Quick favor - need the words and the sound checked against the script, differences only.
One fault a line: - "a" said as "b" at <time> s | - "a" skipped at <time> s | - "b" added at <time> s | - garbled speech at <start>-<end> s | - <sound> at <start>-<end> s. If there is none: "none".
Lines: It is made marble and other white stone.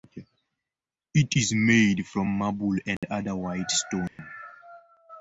- "from" added at 2.1 s
- dropout at 3.0-3.0 s
- dropout at 4.1-4.2 s